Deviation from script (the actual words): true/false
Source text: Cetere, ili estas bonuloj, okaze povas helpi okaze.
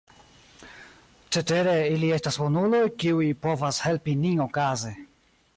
true